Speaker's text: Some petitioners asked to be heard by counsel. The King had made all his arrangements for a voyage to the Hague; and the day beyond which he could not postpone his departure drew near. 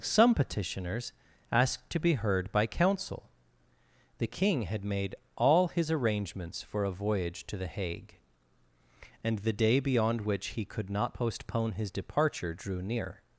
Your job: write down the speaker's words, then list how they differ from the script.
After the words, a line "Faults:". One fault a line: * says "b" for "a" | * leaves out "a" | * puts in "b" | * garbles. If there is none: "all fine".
Some petitioners asked to be heard by counsel. The King had made all his arrangements for a voyage to the Hague; and the day beyond which he could not postpone his departure drew near.
Faults:
all fine